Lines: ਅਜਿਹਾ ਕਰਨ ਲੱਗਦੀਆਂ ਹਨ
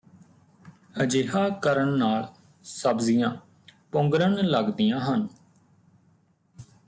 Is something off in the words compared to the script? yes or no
yes